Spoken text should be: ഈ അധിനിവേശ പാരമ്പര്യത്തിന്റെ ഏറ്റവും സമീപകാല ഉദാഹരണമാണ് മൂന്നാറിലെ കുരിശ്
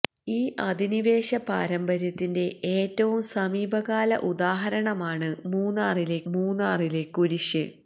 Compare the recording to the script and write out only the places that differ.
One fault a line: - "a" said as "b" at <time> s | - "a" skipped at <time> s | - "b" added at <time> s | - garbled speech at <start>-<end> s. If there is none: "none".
- "മൂന്നാറിലെ" added at 6.3 s